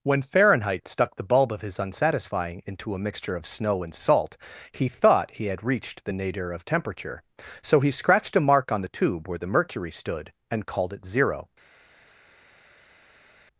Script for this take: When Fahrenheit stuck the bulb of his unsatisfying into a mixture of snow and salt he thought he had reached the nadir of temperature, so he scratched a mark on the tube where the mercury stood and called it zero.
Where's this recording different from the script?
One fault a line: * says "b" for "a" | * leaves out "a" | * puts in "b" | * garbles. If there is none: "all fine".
all fine